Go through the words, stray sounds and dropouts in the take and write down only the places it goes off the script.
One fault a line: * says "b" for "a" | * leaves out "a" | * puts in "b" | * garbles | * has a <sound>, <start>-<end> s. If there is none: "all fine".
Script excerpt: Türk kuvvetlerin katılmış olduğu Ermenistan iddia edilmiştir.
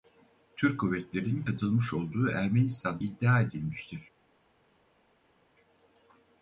all fine